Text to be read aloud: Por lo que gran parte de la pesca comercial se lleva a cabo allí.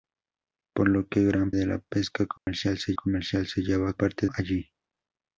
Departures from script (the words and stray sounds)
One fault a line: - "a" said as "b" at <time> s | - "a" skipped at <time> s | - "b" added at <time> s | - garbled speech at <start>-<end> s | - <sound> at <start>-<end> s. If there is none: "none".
- "parte" skipped at 1.5 s
- dropout at 2.4-2.5 s
- "comercial se" added at 2.9 s
- "cabo" said as "parte" at 3.9 s